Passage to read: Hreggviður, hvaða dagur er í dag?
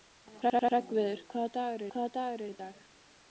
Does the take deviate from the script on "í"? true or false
false